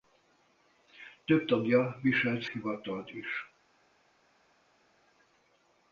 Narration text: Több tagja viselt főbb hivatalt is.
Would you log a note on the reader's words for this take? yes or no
yes